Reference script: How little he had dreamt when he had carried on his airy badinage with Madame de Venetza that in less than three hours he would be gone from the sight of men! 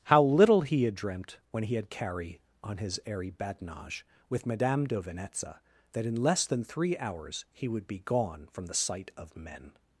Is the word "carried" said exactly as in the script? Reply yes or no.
no